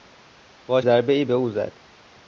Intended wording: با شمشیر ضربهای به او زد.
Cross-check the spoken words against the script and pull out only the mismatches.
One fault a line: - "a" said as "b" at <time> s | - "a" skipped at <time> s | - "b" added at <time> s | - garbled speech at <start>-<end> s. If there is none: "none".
- "شمشیر" skipped at 0.8 s